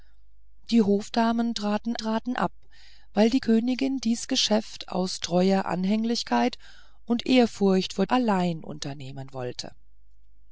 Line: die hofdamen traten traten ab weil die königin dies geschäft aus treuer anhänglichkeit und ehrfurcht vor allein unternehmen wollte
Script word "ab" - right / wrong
right